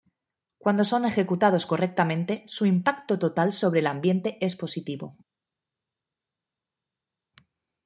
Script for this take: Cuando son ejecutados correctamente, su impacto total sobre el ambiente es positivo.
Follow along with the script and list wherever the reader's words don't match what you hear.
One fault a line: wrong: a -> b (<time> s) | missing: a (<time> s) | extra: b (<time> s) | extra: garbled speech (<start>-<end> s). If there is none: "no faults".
no faults